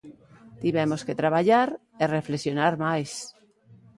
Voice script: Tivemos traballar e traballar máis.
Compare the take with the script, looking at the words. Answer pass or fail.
fail